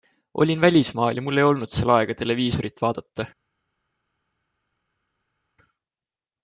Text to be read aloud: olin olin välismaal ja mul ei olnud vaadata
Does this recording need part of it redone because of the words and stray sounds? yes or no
yes